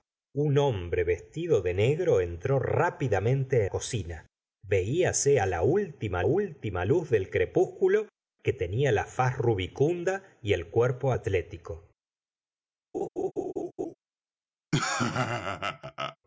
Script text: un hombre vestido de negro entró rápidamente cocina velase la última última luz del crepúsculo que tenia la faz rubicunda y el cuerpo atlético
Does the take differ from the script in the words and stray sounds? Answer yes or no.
yes